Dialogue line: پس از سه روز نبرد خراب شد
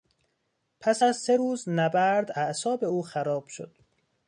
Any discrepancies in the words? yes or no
yes